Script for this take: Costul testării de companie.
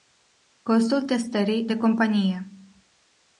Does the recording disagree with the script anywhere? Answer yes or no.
no